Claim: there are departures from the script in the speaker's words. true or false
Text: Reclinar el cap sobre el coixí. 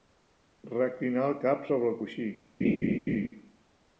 false